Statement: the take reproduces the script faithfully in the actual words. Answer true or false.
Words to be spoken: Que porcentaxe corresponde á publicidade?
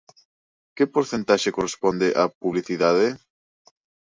true